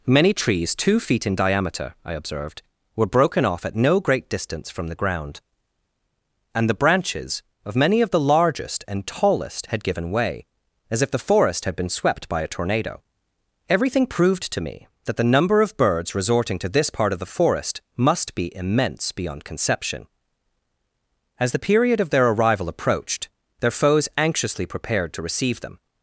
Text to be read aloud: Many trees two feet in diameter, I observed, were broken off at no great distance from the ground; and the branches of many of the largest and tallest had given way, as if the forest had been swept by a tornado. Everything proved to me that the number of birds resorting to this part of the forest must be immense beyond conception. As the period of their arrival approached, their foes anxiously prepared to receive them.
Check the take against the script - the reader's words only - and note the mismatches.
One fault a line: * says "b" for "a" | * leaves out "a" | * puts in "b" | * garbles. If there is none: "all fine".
all fine